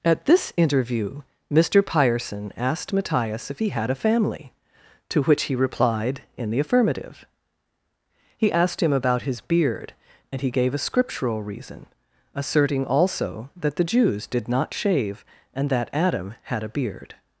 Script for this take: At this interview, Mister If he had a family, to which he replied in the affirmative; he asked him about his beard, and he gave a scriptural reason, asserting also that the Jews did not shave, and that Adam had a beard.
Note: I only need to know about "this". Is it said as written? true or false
true